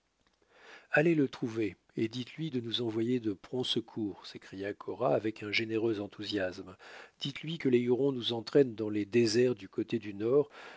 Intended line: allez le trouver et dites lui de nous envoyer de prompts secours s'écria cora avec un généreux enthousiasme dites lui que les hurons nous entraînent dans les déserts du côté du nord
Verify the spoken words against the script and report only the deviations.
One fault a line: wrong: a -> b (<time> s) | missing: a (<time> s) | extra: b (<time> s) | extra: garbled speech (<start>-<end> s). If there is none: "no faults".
no faults